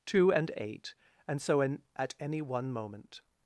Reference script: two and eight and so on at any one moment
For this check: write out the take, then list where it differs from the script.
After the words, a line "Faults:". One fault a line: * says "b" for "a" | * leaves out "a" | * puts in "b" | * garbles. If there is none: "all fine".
two and eight and so in at any one moment
Faults:
* says "in" for "on"